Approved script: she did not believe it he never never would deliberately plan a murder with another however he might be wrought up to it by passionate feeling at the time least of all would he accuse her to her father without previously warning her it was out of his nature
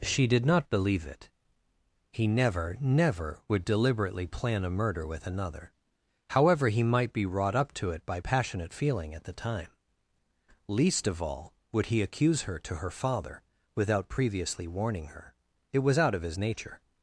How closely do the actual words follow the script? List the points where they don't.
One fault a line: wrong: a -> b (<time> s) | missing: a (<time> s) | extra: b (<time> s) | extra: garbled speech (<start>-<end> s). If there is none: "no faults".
no faults